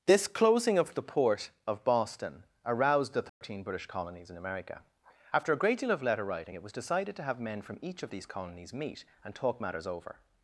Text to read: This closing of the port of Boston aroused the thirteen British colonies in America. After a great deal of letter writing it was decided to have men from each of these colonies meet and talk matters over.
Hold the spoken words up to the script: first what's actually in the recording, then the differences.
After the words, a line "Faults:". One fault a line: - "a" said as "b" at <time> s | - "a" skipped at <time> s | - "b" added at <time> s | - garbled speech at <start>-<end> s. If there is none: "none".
This closing of the port of Boston aroused the thirteen British colonies in America. After a great deal of letter writing it was decided to have men from each of these colonies meet and talk matters over.
Faults:
none